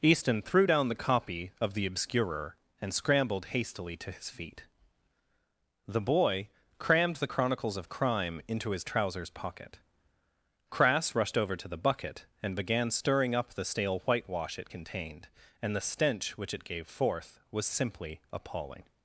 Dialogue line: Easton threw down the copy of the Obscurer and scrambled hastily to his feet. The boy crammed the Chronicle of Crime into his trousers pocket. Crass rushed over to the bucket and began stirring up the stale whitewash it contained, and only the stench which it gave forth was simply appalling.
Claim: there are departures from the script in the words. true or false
true